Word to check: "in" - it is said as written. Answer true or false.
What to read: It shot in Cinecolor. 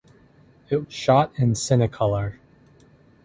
true